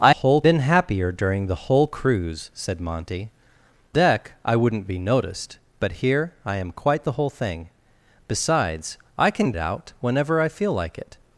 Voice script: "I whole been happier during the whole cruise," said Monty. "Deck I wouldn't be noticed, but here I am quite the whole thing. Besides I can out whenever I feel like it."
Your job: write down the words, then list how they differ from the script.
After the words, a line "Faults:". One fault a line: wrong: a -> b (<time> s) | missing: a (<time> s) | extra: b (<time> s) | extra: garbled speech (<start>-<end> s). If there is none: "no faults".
"I whole been happier during the whole cruise," said Monty. "Deck I wouldn't be noticed, but here I am quite the whole thing. Besides I can out whenever I feel like it."
Faults:
no faults